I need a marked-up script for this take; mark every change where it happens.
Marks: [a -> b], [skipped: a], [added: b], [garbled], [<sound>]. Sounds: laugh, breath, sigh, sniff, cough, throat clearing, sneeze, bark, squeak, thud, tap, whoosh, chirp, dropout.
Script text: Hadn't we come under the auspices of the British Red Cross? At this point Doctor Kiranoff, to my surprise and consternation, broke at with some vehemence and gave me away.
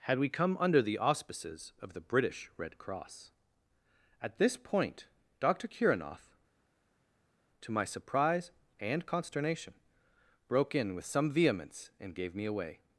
[Hadn't -> Had] we come under the auspices of the British Red Cross? At this point Doctor Kiranoff, to my surprise and consternation, broke [at -> in] with some vehemence and gave me away.